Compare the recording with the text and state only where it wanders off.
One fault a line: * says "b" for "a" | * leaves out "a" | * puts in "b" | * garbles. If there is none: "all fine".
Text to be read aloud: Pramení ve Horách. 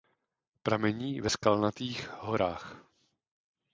* puts in "Skalnatých"